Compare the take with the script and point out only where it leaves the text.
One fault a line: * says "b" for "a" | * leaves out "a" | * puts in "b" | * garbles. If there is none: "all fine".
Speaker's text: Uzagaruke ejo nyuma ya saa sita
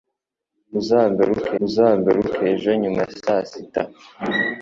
* puts in "uzagaruke"